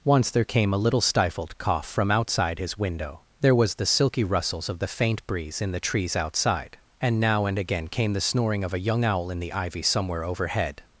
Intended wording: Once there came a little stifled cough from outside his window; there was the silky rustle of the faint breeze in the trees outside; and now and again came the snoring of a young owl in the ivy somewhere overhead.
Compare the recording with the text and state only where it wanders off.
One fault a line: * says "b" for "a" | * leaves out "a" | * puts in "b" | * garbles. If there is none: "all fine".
* says "rustles" for "rustle"